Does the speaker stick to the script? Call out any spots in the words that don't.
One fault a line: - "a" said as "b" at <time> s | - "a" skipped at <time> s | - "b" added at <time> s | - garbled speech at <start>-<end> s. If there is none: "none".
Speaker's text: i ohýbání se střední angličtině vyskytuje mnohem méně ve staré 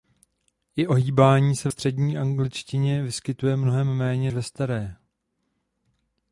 none